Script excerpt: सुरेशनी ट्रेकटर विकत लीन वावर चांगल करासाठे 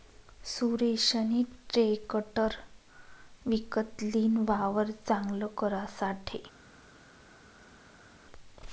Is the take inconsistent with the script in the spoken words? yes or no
no